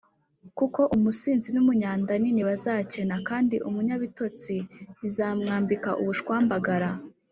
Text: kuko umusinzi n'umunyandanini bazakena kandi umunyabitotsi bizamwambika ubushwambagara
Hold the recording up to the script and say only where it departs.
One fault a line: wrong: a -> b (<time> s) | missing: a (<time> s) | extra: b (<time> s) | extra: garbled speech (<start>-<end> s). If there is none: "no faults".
no faults